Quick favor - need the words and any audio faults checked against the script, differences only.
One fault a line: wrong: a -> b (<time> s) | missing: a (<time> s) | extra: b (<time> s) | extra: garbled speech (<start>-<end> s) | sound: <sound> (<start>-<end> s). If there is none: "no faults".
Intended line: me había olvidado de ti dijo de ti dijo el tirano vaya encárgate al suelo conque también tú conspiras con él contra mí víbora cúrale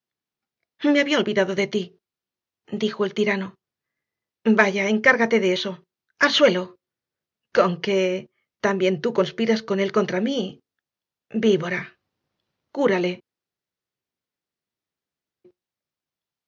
missing: de ti dijo (3.0 s)
extra: de eso (5.4 s)